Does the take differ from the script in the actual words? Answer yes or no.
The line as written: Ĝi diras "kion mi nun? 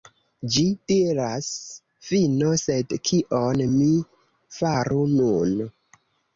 yes